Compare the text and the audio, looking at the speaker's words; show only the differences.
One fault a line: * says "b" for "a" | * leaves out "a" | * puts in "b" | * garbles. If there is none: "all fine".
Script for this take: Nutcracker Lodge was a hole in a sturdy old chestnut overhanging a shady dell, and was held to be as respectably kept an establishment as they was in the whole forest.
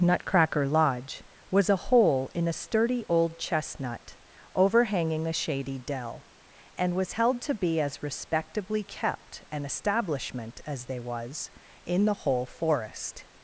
all fine